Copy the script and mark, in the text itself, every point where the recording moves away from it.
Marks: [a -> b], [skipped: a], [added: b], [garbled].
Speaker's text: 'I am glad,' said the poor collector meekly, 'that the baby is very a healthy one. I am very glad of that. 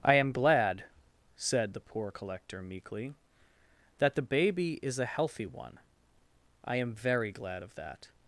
'I am glad,' said the poor collector meekly, 'that the baby is [skipped: very] a healthy one. I am very glad of that.